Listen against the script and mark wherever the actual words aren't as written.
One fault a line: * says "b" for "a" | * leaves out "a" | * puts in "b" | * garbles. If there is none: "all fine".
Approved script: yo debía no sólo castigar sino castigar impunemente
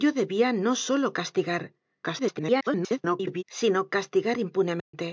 * garbles